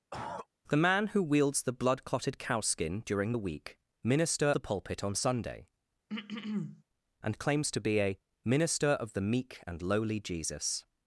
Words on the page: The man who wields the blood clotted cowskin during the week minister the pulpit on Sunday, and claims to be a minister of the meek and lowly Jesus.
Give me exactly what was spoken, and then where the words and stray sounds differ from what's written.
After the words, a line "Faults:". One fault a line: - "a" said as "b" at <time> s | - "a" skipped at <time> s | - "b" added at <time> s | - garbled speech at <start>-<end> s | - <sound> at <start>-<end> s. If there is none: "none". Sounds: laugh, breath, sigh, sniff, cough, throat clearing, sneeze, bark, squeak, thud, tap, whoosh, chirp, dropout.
The man who wields the blood clotted cowskin during the week minister the pulpit on Sunday, and claims to be a minister of the meek and lowly Jesus.
Faults:
- cough at 0.1-0.5 s
- throat clearing at 6.1-6.8 s